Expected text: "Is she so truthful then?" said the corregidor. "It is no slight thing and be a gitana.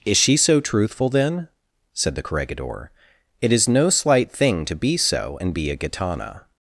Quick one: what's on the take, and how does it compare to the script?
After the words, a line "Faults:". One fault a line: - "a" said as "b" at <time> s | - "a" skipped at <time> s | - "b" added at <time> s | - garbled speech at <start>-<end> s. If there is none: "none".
"Is she so truthful then?" said the corregidor. "It is no slight thing to be so and be a gitana.
Faults:
- "to be so" added at 4.6 s